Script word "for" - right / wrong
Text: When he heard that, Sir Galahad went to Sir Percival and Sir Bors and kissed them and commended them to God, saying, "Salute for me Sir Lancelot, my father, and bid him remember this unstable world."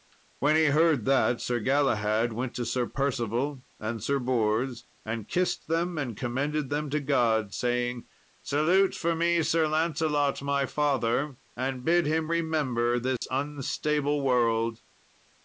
right